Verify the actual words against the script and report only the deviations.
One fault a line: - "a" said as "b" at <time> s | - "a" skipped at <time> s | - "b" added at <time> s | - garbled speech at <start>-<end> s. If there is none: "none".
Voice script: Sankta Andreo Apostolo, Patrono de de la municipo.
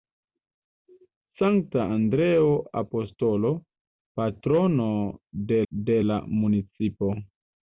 none